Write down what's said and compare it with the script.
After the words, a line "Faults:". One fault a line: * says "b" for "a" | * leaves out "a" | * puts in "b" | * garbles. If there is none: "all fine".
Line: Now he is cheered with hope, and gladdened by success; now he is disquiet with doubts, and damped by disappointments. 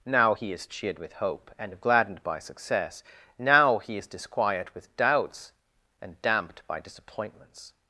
Now he is cheered with hope, and gladdened by success; now he is disquiet with doubts, and damped by disappointments.
Faults:
all fine